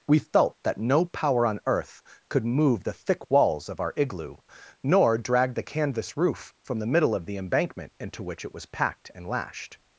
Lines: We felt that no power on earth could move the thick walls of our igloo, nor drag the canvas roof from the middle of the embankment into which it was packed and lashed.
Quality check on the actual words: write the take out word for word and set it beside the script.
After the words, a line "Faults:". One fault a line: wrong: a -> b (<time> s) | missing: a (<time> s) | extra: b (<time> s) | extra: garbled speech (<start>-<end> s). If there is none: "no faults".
We felt that no power on earth could move the thick walls of our igloo, nor drag the canvas roof from the middle of the embankment into which it was packed and lashed.
Faults:
no faults